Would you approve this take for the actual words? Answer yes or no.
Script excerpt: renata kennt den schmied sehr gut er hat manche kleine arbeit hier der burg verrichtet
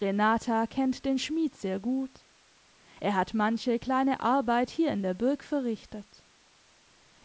no